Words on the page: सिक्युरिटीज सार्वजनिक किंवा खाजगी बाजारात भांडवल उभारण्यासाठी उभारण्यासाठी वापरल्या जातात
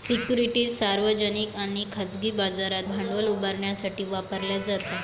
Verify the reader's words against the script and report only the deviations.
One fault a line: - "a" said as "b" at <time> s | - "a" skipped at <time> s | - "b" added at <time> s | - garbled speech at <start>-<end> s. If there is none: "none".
- "किंवा" said as "आणि" at 1.6 s
- "उभारण्यासाठी" skipped at 4.0 s